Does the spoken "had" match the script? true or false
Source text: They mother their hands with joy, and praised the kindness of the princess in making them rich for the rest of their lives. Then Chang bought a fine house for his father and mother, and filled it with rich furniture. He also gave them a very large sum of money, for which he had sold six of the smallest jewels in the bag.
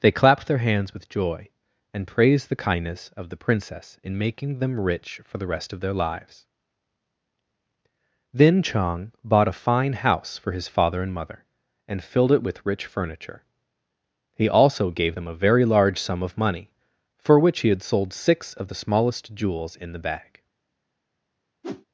true